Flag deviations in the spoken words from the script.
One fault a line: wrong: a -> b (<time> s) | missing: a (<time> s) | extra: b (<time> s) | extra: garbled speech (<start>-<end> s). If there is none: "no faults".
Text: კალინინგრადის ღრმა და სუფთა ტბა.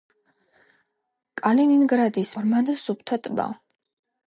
no faults